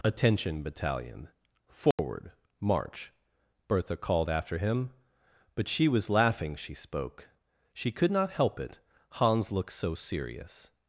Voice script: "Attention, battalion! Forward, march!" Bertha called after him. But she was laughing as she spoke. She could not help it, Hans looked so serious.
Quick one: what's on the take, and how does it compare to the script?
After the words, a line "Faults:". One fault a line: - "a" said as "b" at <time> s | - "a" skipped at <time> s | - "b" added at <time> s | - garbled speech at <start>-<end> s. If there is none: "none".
"Attention, battalion! Forward, march!" Bertha called after him. But she was laughing she spoke. She could not help it, Hans looked so serious.
Faults:
- "as" skipped at 6.5 s